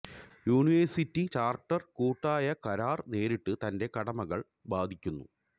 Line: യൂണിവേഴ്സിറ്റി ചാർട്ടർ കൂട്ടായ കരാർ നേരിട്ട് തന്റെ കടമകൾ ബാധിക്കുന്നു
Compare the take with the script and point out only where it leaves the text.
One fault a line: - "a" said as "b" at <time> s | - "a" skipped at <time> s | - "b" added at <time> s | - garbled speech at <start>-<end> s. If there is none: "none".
none